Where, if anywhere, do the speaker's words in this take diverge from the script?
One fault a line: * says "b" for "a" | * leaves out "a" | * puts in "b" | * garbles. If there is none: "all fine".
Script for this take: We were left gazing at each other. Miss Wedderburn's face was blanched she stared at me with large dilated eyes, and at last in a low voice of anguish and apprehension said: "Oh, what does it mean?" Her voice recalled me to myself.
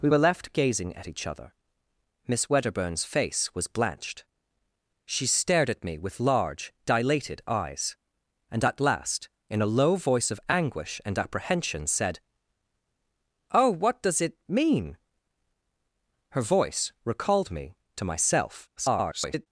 * garbles